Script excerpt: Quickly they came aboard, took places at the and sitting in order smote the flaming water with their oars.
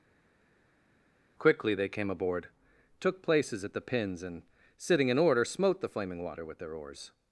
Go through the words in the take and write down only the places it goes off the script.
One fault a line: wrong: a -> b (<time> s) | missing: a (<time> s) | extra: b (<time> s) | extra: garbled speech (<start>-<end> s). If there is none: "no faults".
extra: pins (3.8 s)